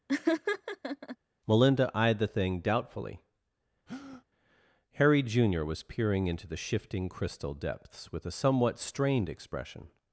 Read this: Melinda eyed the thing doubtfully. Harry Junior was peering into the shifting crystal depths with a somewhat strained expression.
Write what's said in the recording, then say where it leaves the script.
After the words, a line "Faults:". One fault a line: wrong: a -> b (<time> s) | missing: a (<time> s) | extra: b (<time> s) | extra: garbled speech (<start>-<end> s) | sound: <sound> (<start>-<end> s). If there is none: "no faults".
Melinda eyed the thing doubtfully. Harry Junior was peering into the shifting crystal depths with a somewhat strained expression.
Faults:
sound: laugh (0.1-1.2 s)
sound: breath (3.9-4.2 s)